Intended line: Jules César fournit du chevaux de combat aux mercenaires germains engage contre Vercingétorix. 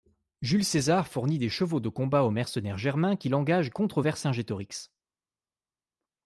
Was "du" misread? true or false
true